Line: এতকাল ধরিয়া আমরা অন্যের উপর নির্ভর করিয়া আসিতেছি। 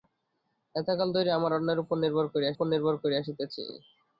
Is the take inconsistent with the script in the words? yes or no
yes